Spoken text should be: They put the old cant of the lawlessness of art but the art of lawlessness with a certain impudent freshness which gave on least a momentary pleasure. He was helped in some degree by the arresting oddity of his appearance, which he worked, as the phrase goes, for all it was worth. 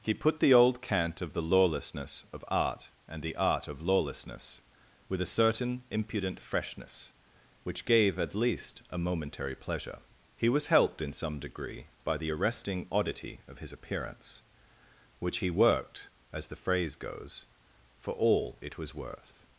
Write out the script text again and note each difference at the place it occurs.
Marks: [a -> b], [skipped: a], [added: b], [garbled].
[They -> He] put the old cant of the lawlessness of art [but -> and] the art of lawlessness with a certain impudent freshness which gave [on -> at] least a momentary pleasure. He was helped in some degree by the arresting oddity of his appearance, which he worked, as the phrase goes, for all it was worth.